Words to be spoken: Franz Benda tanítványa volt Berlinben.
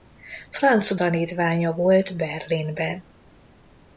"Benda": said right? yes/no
no